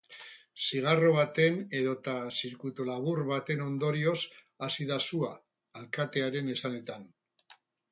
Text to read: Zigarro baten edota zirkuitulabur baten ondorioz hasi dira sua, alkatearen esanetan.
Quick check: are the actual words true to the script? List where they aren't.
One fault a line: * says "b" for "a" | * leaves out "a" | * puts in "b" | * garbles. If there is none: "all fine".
* says "da" for "dira"